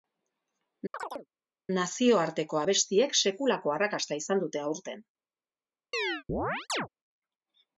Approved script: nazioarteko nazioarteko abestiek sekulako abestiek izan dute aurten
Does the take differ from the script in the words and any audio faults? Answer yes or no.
yes